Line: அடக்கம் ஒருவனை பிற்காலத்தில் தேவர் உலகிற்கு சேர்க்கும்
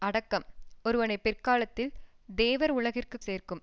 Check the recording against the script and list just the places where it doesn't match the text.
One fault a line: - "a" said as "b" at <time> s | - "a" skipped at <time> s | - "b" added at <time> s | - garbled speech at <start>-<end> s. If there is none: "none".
none